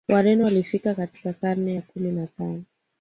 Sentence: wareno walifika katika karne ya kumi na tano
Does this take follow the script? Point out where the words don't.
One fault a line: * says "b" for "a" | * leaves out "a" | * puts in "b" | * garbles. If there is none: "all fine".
all fine